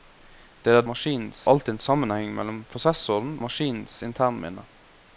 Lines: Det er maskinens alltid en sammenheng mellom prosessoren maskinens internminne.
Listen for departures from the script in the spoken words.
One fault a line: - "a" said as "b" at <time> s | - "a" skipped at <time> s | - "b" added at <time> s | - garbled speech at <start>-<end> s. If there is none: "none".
none